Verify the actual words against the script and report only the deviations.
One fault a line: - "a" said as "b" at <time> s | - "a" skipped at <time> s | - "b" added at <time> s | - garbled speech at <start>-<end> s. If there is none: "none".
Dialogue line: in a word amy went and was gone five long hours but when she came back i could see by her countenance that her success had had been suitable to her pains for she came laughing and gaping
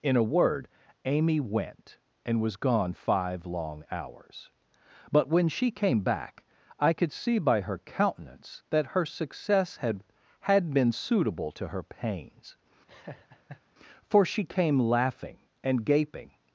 none